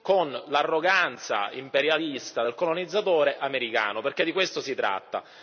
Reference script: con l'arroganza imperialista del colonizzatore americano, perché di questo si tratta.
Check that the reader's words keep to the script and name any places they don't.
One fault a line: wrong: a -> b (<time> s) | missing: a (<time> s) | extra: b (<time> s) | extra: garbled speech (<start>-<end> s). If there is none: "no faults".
no faults